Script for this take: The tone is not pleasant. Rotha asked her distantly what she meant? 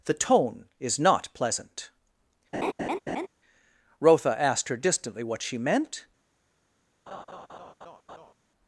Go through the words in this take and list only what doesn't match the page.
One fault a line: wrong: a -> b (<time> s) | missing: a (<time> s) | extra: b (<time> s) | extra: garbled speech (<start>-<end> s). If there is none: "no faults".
no faults